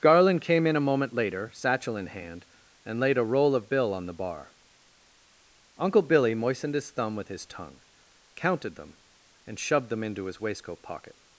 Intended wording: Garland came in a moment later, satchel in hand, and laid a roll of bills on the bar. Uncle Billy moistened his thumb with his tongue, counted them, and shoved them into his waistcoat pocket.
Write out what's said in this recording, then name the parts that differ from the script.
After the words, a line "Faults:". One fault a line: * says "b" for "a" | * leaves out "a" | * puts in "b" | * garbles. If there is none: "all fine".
Garland came in a moment later, satchel in hand, and laid a roll of bill on the bar. Uncle Billy moistened his thumb with his tongue, counted them, and shoved them into his waistcoat pocket.
Faults:
* says "bill" for "bills"